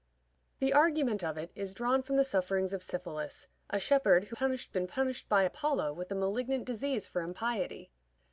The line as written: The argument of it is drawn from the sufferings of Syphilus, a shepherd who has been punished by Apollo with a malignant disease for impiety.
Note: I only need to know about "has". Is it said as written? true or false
false